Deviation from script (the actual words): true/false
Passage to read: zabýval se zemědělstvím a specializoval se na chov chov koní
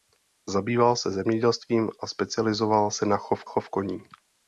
false